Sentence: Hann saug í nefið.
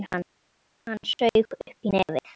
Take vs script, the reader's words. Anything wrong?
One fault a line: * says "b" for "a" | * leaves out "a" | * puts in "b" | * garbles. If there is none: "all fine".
* puts in "upp"